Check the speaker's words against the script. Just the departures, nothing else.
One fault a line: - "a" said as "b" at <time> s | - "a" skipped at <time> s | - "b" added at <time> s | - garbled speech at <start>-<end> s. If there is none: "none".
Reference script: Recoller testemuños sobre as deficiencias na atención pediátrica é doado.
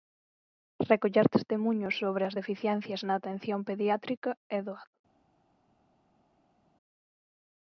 none